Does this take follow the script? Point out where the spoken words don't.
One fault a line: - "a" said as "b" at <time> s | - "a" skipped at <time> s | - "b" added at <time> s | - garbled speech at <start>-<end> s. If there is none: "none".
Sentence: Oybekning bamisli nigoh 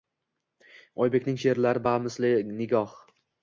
- "she'rlari" added at 1.4 s